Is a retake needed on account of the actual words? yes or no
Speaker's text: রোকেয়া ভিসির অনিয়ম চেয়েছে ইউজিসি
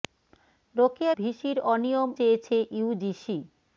no